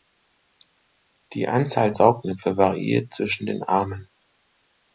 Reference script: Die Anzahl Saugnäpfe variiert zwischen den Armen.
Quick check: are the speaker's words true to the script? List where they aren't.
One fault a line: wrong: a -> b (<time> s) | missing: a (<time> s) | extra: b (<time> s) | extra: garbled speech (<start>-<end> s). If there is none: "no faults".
no faults